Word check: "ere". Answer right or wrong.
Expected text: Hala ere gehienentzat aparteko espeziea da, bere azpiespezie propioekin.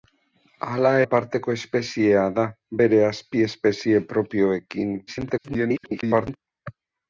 wrong